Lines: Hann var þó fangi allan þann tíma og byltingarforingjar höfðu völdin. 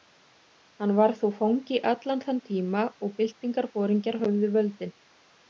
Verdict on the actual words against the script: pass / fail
pass